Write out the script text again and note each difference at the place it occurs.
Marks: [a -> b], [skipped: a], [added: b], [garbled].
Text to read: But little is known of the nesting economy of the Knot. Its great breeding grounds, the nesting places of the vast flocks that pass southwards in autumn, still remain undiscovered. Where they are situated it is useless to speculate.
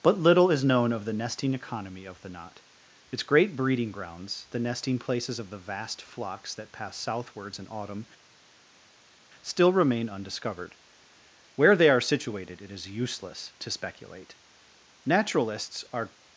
But little is known of the nesting economy of the Knot. Its great breeding grounds, the nesting places of the vast flocks that pass southwards in autumn, still remain undiscovered. Where they are situated it is useless to speculate. [added: Naturalists are]